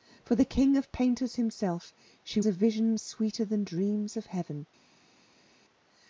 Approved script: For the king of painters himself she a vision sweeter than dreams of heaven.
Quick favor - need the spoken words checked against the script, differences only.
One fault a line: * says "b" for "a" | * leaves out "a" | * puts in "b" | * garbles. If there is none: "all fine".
all fine